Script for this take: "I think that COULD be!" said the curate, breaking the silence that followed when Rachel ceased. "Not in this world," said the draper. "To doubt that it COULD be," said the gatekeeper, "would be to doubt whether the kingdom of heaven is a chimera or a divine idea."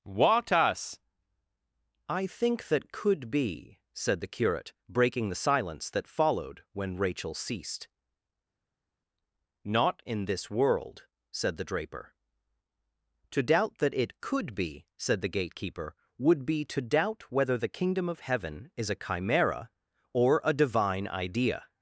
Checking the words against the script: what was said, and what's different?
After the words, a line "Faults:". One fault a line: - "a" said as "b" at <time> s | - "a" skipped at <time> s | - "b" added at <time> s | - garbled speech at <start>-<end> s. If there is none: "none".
what us "I think that COULD be!" said the curate, breaking the silence that followed when Rachel ceased. "Not in this world," said the draper. "To doubt that it COULD be," said the gatekeeper, "would be to doubt whether the kingdom of heaven is a chimera or a divine idea."
Faults:
- "what us" added at 0.0 s